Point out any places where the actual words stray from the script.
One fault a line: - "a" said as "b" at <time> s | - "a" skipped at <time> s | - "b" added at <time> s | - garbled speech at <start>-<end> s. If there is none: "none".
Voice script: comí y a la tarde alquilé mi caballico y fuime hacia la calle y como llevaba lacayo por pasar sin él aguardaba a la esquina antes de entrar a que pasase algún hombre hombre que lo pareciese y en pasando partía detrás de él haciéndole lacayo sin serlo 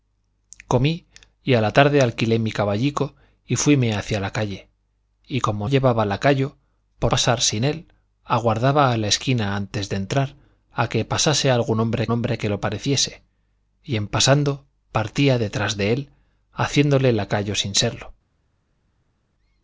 none